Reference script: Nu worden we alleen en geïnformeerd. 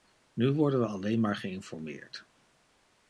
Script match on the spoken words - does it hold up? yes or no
no